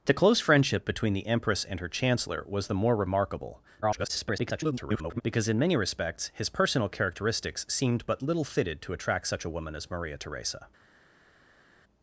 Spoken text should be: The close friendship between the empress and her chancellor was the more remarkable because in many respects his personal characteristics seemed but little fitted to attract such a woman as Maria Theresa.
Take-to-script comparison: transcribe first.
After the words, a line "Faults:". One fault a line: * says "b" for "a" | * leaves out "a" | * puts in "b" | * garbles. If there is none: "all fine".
The close friendship between the empress and her chancellor was the more remarkable [garbled] because in many respects his personal characteristics seemed but little fitted to attract such a woman as Maria Theresa.
Faults:
* garbles